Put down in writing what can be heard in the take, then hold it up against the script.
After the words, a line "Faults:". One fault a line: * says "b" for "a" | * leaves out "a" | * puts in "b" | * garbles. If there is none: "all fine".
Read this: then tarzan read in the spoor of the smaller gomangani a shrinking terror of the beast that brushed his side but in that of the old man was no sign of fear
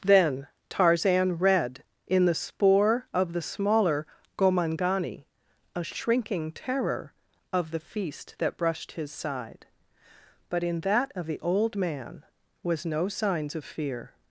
then tarzan read in the spoor of the smaller gomangani a shrinking terror of the feast that brushed his side but in that of the old man was no signs of fear
Faults:
* says "feast" for "beast"
* says "signs" for "sign"